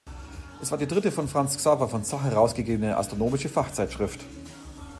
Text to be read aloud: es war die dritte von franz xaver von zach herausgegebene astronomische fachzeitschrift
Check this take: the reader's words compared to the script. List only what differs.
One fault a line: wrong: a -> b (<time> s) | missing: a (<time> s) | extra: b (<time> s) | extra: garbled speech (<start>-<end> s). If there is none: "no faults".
no faults